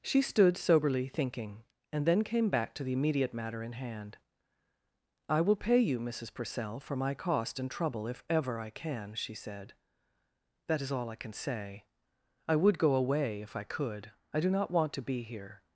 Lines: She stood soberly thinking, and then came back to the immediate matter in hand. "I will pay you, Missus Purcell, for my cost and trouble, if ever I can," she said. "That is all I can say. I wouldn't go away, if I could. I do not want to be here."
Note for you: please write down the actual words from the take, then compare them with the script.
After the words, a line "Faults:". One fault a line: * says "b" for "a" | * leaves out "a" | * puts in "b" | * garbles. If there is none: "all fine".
She stood soberly thinking, and then came back to the immediate matter in hand. "I will pay you, Missus Purcell, for my cost and trouble, if ever I can," she said. "That is all I can say. I would go away, if I could. I do not want to be here."
Faults:
* says "would" for "wouldn't"